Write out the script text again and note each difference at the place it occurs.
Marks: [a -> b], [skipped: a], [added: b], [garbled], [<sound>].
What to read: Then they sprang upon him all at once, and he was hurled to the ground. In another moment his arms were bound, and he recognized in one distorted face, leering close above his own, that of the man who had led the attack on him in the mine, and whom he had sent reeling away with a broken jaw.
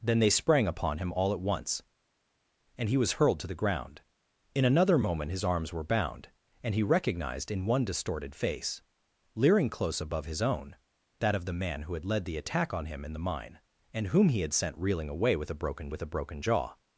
Then they sprang upon him all at once, and he was hurled to the ground. In another moment his arms were bound, and he recognized in one distorted face, leering close above his own, that of the man who had led the attack on him in the mine, and whom he had sent reeling away with a broken [added: with a broken] jaw.